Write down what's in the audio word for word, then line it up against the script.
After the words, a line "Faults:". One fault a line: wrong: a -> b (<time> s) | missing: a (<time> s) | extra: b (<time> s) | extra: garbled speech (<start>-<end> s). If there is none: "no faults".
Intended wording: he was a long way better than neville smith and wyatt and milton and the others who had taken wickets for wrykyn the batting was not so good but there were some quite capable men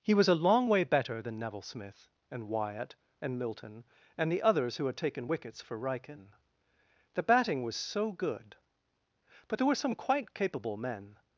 he was a long way better than neville smith and wyatt and milton and the others who had taken wickets for wrykyn the batting was so good but there were some quite capable men
Faults:
missing: not (7.8 s)